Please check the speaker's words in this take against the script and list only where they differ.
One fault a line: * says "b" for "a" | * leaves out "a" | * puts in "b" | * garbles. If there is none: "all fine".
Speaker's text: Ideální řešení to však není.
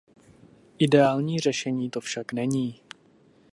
all fine